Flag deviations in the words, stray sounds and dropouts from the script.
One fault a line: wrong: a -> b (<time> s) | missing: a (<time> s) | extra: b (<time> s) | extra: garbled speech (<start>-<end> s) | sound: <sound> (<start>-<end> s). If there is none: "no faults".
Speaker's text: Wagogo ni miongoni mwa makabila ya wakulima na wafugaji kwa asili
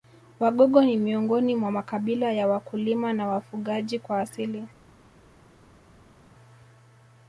no faults